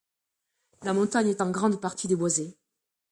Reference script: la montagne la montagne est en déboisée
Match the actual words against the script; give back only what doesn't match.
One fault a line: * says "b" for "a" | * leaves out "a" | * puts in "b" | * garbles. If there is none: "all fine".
* says "est en grande partie" for "la montagne est en"